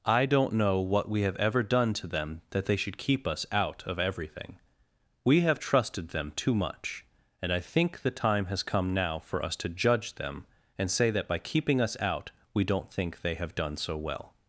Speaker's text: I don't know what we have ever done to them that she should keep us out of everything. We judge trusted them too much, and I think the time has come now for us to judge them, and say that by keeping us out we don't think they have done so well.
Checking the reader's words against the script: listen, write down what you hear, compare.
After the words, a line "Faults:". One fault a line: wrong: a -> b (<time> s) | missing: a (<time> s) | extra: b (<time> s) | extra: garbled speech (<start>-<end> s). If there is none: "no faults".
I don't know what we have ever done to them that they should keep us out of everything. We have trusted them too much, and I think the time has come now for us to judge them, and say that by keeping us out we don't think they have done so well.
Faults:
wrong: she -> they (2.6 s)
wrong: judge -> have (5.4 s)